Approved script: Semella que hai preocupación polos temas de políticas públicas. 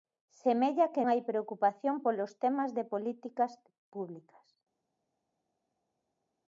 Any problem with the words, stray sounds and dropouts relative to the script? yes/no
no